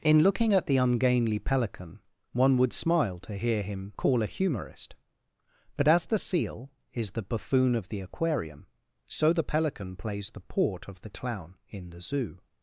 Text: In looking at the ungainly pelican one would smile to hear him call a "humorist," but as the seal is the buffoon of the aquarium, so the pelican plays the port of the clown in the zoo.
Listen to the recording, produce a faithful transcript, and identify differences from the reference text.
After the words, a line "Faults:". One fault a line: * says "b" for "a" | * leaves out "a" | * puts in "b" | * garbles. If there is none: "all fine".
In looking at the ungainly pelican one would smile to hear him call a "humorist," but as the seal is the buffoon of the aquarium, so the pelican plays the port of the clown in the zoo.
Faults:
all fine